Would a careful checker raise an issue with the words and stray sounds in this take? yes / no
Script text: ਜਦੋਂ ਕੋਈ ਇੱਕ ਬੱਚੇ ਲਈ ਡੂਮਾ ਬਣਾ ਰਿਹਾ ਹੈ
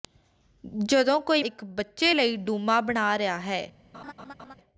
yes